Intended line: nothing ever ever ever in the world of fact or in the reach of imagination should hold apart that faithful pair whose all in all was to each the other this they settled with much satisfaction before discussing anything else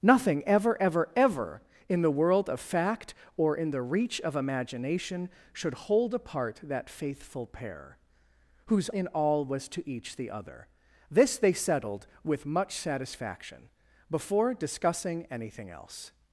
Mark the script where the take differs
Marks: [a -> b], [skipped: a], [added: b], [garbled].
nothing ever ever ever in the world of fact or in the reach of imagination should hold apart that faithful pair whose [skipped: all] in all was to each the other this they settled with much satisfaction before discussing anything else